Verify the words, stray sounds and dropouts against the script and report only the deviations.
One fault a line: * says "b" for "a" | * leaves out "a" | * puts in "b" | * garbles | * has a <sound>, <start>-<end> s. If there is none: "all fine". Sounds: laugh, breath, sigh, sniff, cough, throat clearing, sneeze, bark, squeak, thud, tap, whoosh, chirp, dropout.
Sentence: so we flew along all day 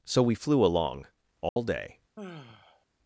* has a dropout, 1.5-1.6 s
* has a sigh, 2.2-2.9 s